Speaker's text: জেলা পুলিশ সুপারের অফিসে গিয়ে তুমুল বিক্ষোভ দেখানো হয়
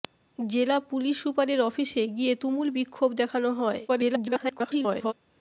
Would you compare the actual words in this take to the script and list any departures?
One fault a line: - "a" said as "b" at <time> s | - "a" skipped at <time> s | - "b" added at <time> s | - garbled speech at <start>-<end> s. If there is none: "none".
- garbled speech at 3.9-5.1 s